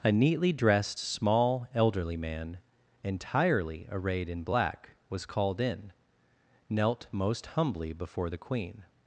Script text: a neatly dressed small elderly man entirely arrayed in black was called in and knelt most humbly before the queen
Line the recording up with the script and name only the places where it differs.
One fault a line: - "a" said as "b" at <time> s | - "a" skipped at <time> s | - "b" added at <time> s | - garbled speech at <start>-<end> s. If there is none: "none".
- "and" skipped at 5.9 s